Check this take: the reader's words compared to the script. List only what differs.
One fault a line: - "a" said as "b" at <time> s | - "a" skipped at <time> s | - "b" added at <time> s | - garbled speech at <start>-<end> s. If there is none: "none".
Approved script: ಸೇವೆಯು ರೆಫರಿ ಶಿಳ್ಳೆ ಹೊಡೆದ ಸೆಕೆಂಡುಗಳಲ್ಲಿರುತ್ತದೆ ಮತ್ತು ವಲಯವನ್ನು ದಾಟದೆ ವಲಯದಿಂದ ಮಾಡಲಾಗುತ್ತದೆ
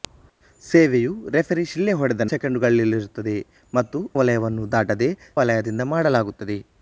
none